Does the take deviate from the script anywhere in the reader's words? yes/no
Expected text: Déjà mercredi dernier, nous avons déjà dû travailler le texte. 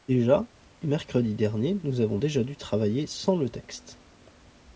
yes